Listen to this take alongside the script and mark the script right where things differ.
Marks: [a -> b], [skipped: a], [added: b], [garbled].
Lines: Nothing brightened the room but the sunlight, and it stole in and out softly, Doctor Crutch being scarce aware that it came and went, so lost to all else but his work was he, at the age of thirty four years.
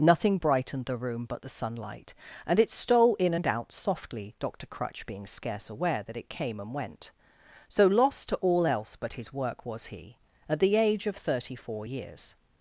Nothing brightened the room but the sunlight, and it stole in and out softly, Doctor Crutch being scarce aware that it came and went, so lost to all else but his work was he, at the age of thirty four years.